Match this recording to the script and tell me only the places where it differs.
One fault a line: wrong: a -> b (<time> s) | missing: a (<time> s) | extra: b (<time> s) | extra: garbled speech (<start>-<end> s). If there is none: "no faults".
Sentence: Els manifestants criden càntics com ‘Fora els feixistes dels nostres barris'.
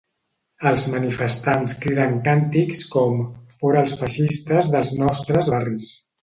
no faults